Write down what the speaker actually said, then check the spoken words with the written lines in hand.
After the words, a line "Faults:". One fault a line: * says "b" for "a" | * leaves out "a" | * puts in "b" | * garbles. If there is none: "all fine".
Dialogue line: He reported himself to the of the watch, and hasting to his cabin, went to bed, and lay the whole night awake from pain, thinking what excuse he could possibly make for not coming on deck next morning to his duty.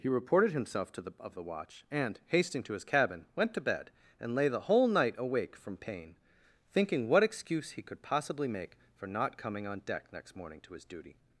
He reported himself to the of the watch, and hasting to his cabin, went to bed, and lay the whole night awake from pain, thinking what excuse he could possibly make for not coming on deck next morning to his duty.
Faults:
all fine